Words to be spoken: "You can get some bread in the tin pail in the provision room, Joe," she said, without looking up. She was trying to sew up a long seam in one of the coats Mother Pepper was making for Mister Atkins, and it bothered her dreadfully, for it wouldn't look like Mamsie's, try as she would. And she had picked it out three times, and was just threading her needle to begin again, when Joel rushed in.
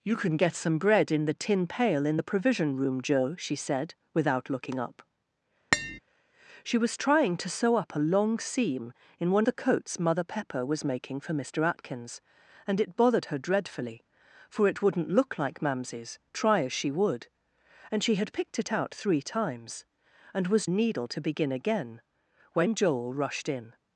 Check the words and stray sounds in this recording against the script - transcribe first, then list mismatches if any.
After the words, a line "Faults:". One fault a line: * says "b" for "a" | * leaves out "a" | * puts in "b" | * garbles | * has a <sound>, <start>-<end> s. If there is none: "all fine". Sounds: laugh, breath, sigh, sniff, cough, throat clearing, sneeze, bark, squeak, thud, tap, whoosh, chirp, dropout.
"You can get some bread in the tin pail in the provision room, Joe," she said, without looking up. She was trying to sew up a long seam in one the coats Mother Pepper was making for Mister Atkins, and it bothered her dreadfully, for it wouldn't look like Mamsie's, try as she would. And she had picked it out three times, and was needle to begin again, when Joel rushed in.
Faults:
* has a tap, 5.7-6.0 s
* leaves out "of"
* leaves out "just threading her"